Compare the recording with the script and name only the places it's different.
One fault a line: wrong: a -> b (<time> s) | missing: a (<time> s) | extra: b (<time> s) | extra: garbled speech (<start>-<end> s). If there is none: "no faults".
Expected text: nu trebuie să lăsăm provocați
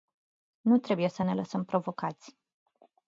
extra: ne (1.2 s)